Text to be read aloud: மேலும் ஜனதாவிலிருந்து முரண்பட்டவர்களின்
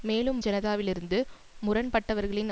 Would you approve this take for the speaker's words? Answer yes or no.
yes